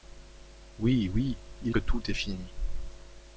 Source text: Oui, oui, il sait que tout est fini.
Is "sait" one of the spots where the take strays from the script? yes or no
yes